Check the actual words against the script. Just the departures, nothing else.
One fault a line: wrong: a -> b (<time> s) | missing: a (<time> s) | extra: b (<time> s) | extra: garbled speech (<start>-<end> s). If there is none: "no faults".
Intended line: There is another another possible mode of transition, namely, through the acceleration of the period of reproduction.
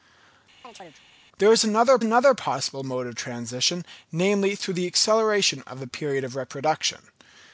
no faults